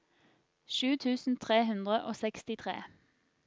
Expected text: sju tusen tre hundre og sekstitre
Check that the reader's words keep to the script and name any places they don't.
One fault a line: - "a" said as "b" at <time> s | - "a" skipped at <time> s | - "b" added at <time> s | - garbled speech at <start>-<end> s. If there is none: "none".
none